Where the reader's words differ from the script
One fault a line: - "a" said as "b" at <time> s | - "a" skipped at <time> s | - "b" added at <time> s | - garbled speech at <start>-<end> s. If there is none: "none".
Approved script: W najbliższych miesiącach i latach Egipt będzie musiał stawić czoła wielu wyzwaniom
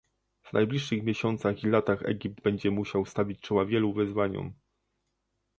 none